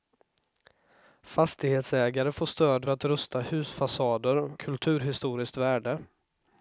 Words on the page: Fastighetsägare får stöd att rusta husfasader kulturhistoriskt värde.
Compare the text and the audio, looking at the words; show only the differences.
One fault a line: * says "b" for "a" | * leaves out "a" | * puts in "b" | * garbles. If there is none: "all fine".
all fine